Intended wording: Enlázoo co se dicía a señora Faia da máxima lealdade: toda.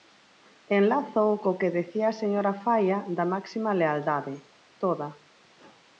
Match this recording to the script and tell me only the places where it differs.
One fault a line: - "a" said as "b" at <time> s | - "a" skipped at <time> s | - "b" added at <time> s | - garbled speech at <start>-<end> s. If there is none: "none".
- "se" said as "que" at 1.6 s